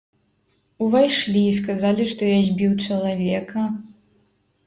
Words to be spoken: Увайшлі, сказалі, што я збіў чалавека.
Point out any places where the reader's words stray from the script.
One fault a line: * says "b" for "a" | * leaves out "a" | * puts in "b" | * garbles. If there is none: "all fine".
all fine